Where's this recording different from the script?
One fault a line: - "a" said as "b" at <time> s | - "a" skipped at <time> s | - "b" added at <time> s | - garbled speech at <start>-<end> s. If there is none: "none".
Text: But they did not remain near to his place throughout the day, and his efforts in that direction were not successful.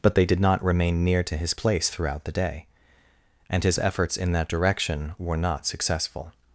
none